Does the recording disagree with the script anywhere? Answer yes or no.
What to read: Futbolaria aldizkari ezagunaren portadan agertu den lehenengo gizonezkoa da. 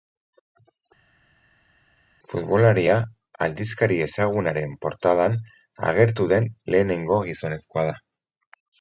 no